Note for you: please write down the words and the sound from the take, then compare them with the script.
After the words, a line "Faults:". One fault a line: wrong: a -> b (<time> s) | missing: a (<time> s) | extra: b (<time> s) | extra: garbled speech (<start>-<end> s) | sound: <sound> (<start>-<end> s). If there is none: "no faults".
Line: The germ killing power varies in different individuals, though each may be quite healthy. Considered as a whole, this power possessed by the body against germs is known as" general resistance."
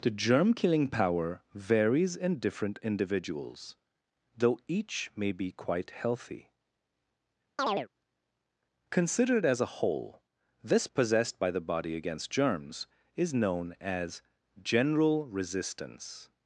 The germ killing power varies in different individuals, though each may be quite healthy. Considered as a whole, this possessed by the body against germs is known as" general resistance."
Faults:
sound: chirp (7.6-7.9 s)
missing: power (10.9 s)